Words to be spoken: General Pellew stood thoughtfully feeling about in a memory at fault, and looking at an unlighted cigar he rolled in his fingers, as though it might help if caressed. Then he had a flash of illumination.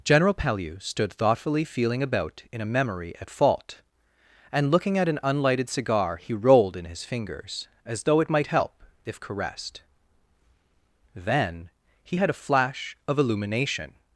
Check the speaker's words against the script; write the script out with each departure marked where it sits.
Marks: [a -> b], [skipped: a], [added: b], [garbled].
General Pellew stood thoughtfully feeling about in a memory at fault, and looking at an unlighted cigar he rolled in his fingers, as though it might help if caressed. Then he had a flash of illumination.